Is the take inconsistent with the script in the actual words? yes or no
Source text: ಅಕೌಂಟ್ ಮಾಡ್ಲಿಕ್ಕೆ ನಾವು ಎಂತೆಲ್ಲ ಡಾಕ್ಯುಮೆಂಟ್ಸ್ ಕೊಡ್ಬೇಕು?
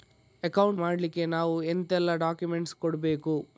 no